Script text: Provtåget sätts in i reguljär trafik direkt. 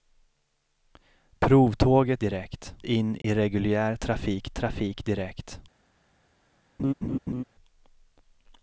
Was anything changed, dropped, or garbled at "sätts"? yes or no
yes